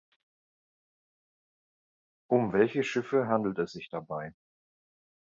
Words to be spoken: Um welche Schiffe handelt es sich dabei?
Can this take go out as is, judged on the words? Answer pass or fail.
pass